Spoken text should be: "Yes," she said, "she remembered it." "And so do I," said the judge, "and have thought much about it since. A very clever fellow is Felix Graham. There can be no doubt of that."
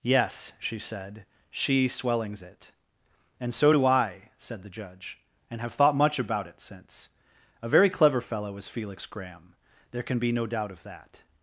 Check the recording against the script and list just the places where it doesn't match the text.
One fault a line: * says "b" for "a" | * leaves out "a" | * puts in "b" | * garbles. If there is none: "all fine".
* says "swellings" for "remembered"